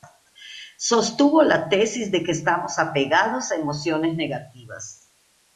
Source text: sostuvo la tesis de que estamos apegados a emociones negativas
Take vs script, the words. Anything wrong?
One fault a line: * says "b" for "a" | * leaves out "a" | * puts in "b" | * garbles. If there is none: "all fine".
all fine